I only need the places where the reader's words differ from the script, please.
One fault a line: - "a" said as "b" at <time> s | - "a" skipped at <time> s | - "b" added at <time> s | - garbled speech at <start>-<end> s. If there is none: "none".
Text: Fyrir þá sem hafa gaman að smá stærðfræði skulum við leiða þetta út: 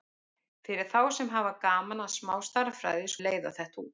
- "skulum" skipped at 3.1 s